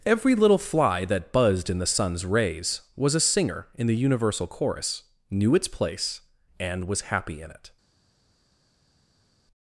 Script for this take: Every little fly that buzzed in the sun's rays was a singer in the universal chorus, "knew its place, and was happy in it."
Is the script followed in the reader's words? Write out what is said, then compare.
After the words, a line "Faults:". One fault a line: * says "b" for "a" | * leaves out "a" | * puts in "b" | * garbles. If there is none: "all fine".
Every little fly that buzzed in the sun's rays was a singer in the universal chorus, "knew its place, and was happy in it."
Faults:
all fine